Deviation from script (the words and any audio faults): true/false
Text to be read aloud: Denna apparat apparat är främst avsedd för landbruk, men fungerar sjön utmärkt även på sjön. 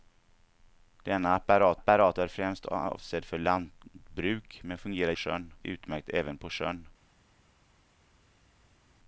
false